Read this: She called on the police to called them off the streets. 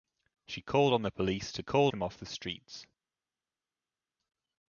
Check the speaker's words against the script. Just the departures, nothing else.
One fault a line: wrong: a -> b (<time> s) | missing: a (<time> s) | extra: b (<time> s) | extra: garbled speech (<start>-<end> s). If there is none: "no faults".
no faults